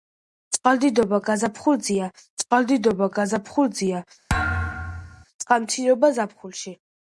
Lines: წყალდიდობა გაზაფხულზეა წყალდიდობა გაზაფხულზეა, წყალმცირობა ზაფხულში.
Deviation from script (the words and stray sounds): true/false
true